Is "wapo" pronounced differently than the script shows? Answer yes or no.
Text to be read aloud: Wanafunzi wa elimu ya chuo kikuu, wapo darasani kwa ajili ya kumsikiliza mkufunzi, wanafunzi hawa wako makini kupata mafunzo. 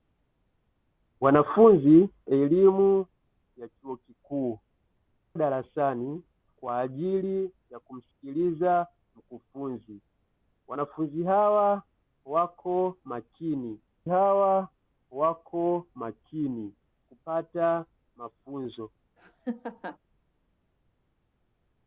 yes